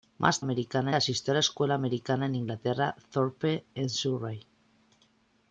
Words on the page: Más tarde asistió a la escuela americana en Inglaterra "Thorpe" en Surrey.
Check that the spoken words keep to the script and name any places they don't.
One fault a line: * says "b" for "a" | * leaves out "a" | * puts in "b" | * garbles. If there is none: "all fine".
* says "americana" for "tarde"